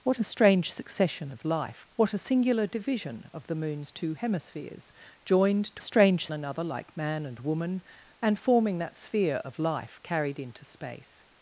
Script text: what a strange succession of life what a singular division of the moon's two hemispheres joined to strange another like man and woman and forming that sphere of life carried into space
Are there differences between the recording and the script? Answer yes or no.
no